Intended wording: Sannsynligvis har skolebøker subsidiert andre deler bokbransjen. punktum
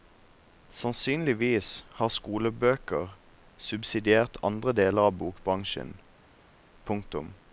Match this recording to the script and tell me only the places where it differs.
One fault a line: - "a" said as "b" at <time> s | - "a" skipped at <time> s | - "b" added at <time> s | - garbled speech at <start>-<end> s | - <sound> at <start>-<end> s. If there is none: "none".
- "av" added at 5.0 s